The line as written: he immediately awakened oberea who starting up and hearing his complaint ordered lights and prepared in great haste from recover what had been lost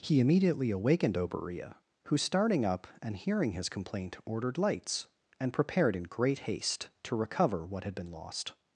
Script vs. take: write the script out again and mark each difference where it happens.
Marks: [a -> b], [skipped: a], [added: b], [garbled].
he immediately awakened oberea who starting up and hearing his complaint ordered lights and prepared in great haste [from -> to] recover what had been lost